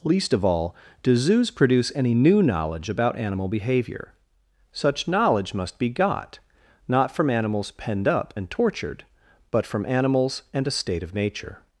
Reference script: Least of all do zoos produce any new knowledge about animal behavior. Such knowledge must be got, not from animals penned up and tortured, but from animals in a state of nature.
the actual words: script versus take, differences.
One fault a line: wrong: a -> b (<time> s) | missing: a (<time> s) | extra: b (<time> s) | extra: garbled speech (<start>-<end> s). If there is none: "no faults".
wrong: in -> and (10.5 s)